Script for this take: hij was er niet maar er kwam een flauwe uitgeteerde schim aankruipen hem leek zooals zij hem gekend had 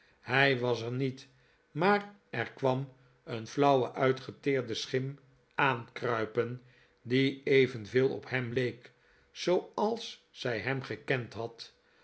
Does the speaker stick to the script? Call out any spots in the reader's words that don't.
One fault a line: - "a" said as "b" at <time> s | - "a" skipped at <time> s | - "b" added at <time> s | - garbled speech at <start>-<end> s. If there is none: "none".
- "die evenveel op" added at 7.0 s